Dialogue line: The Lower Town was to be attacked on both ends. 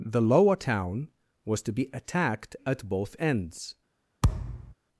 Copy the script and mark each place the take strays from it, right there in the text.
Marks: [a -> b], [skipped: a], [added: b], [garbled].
The Lower Town was to be attacked [on -> at] both ends.